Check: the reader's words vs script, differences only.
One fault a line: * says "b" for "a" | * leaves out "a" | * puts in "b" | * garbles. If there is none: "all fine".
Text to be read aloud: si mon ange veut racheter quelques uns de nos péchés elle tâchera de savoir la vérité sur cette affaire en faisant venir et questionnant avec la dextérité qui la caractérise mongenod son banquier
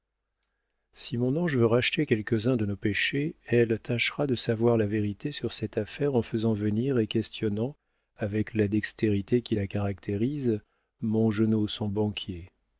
all fine